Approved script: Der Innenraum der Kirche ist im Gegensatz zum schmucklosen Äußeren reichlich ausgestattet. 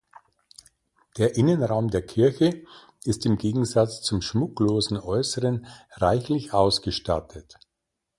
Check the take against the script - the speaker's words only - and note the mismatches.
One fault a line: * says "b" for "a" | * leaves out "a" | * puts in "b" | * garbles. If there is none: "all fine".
all fine